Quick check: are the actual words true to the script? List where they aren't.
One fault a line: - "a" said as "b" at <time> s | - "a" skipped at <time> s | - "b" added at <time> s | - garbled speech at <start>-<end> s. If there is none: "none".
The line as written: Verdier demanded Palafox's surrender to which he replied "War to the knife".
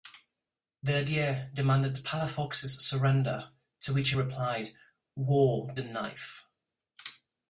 - "to" skipped at 5.7 s